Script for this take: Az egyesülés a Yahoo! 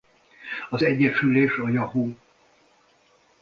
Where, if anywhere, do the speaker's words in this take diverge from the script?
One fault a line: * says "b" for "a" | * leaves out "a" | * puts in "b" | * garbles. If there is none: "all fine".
all fine